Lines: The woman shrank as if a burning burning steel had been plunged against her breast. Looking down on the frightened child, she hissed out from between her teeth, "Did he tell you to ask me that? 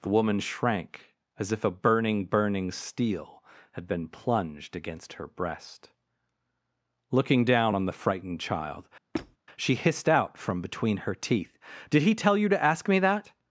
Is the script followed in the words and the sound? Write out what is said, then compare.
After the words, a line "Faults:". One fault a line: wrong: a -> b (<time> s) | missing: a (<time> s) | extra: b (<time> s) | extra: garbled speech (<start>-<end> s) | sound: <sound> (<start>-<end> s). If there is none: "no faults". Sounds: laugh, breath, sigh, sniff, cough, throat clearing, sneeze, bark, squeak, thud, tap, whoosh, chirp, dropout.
The woman shrank as if a burning burning steel had been plunged against her breast. Looking down on the frightened child, she hissed out from between her teeth, "Did he tell you to ask me that?
Faults:
sound: squeak (9.1-9.4 s)